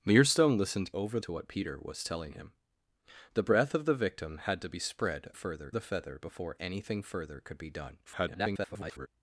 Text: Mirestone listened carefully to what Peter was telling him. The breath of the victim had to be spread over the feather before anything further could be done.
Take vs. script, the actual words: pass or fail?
fail